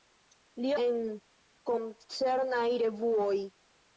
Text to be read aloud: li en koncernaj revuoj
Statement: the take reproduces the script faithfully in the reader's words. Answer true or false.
true